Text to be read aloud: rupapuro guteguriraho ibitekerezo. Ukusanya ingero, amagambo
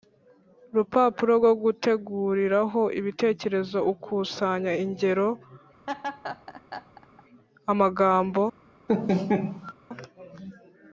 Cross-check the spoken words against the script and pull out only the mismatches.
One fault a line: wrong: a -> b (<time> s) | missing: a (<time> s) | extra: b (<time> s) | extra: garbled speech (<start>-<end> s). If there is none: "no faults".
extra: rwo (1.4 s)